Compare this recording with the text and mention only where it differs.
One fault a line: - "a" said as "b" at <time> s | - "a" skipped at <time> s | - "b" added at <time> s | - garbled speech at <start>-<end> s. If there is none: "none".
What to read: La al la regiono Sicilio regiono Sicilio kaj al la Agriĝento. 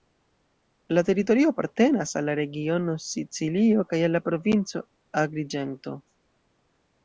- "teritorio apartenas" added at 1.1 s
- "regiono Sicilio" skipped at 3.9 s
- "provinco" added at 4.3 s